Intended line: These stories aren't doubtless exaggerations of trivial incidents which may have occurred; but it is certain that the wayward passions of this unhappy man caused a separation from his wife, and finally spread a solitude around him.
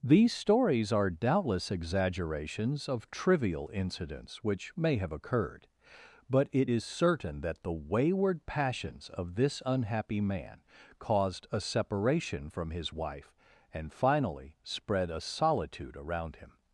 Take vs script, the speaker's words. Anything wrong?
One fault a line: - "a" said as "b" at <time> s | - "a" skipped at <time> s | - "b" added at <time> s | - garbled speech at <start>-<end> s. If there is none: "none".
- "aren't" said as "are" at 0.9 s